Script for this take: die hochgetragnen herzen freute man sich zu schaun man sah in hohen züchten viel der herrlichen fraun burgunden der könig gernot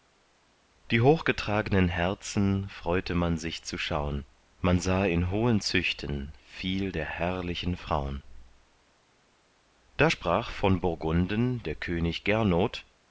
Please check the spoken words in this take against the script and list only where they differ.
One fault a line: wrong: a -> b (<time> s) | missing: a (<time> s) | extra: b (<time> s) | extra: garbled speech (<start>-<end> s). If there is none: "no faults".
extra: da sprach von (10.0 s)